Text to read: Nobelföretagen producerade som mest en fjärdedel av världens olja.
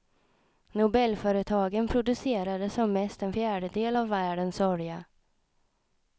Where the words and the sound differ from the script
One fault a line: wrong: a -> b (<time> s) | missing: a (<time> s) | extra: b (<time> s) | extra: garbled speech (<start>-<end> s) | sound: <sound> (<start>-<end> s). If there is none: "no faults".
no faults